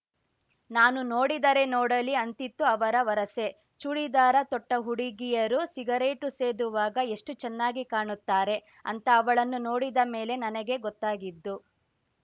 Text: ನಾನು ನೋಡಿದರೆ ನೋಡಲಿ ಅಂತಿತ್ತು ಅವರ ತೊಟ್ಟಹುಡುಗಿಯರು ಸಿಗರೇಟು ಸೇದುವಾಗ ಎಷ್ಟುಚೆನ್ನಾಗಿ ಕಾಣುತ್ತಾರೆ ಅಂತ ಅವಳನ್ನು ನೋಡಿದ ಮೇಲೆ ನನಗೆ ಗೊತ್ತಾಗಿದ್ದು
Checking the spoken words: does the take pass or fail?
fail